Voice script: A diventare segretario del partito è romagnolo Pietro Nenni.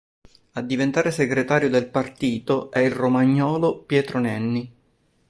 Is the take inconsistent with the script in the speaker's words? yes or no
yes